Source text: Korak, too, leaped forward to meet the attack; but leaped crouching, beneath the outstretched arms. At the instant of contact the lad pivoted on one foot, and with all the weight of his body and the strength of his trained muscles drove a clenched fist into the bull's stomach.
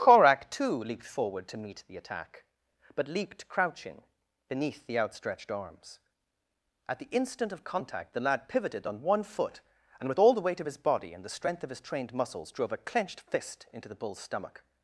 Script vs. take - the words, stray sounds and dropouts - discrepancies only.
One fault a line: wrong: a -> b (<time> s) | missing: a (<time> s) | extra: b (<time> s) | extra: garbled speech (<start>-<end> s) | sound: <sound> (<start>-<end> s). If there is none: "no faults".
no faults